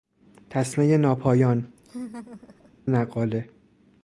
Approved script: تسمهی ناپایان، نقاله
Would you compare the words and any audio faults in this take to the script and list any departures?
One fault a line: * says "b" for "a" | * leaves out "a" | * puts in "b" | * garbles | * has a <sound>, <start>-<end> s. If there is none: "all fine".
* has a laugh, 1.8-2.7 s